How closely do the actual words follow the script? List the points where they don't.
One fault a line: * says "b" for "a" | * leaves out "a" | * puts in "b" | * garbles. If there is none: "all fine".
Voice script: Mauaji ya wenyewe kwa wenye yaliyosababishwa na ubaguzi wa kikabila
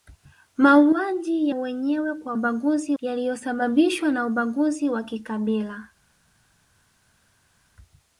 * leaves out "ya"
* says "ubaguzi" for "wenye"